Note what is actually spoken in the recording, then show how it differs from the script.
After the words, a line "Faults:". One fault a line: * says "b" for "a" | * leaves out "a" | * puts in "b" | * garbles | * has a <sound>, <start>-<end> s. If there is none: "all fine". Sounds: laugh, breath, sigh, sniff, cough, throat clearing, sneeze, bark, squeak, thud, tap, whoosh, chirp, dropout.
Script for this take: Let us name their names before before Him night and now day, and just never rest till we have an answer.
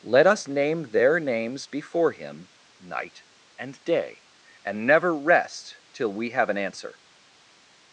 Let us name their names before Him night and day, and never rest till we have an answer.
Faults:
* leaves out "before"
* leaves out "now"
* leaves out "just"